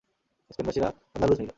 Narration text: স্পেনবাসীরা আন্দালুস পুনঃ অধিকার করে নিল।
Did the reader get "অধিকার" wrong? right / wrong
wrong